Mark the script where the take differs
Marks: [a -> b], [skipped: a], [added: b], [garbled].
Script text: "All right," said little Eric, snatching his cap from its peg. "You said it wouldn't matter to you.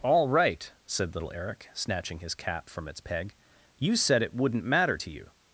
"All right," said little Eric, snatching his cap from its peg. "You said it wouldn't matter to you.